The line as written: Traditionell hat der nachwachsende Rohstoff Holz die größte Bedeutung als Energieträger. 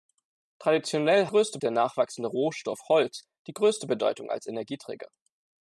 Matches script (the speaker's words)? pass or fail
fail